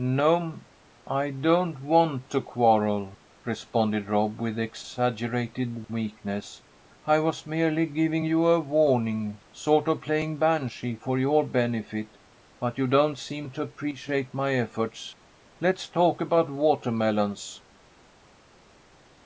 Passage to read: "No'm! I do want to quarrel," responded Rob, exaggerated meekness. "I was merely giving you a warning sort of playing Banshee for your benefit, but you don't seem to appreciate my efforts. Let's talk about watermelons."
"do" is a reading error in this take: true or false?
true